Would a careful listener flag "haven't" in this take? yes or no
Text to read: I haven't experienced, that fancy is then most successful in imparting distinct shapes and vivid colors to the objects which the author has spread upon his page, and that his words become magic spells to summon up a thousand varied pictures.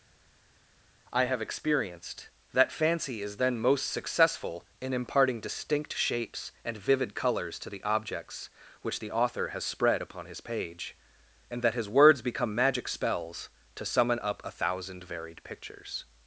yes